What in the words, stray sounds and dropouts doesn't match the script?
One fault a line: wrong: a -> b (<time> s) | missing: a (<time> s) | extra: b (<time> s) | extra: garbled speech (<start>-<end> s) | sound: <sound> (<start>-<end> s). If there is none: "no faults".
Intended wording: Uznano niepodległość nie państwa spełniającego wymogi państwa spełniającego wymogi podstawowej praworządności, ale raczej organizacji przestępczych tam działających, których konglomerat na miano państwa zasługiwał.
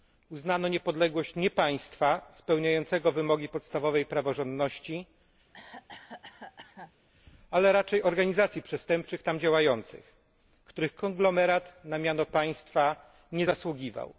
missing: państwa spełniającego wymogi (3.5 s)
sound: cough (5.5-6.9 s)
extra: nie (13.3 s)